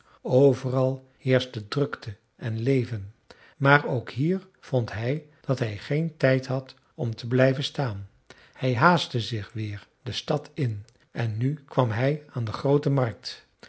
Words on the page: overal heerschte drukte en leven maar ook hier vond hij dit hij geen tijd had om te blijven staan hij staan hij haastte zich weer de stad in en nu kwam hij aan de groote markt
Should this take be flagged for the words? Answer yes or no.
yes